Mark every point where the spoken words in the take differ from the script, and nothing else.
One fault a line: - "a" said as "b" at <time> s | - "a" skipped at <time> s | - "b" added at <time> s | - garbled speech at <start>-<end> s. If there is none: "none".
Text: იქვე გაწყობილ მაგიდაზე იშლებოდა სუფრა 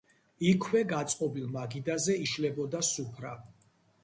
none